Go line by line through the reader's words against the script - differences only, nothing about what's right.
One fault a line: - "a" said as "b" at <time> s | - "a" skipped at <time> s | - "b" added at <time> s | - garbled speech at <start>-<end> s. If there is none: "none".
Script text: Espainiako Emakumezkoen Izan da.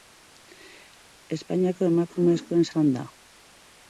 none